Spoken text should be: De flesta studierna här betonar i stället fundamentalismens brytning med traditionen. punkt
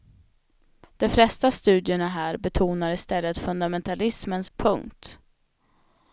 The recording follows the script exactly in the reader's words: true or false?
false